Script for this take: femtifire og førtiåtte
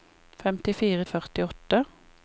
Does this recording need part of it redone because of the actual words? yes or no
no